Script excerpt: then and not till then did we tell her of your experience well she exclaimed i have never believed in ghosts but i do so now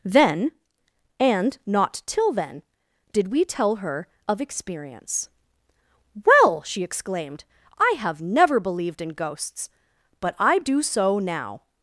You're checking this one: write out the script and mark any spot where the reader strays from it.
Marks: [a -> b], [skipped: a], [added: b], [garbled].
then and not till then did we tell her of [skipped: your] experience well she exclaimed i have never believed in ghosts but i do so now